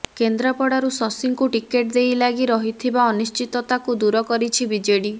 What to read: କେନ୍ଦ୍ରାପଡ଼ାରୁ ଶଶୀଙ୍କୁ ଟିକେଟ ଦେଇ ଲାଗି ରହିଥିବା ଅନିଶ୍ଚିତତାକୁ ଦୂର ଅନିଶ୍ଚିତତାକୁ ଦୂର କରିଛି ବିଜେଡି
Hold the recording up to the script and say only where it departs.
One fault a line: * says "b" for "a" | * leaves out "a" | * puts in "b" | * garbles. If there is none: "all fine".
* leaves out "ଅନିଶ୍ଚିତତାକୁ ଦୂର"